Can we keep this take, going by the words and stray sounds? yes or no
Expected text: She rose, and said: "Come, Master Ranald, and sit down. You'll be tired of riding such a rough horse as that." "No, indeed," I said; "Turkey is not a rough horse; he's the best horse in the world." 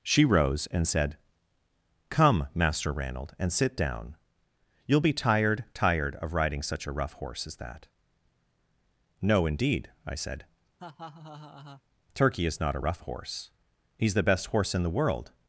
no